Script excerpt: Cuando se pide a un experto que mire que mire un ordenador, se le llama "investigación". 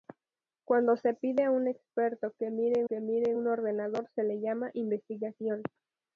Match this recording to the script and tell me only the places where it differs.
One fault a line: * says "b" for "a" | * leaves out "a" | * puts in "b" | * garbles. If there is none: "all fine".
all fine